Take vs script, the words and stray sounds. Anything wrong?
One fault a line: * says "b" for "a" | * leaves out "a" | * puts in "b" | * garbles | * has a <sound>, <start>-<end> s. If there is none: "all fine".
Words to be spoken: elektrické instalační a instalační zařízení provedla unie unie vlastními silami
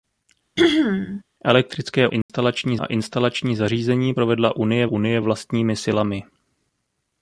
* has a throat clearing, 0.6-1.2 s
* has a dropout, 2.2-2.3 s